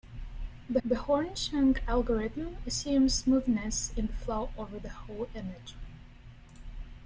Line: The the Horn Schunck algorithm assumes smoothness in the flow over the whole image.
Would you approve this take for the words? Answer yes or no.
yes